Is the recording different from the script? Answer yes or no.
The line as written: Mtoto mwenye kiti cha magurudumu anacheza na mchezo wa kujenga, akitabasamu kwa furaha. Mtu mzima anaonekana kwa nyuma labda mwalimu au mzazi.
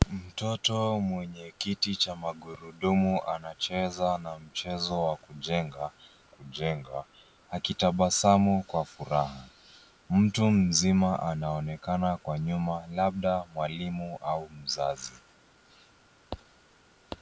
yes